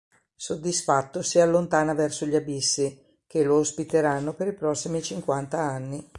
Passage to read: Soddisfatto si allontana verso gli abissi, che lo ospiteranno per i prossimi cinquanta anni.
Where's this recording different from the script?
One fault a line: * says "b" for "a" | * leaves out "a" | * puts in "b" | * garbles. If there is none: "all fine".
all fine